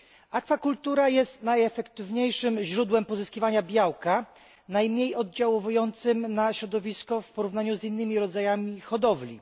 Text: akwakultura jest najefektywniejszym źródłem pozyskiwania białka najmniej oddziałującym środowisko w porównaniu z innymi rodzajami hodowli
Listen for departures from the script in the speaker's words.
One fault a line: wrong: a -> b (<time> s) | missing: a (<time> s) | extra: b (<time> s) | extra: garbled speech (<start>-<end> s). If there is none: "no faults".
extra: na (6.3 s)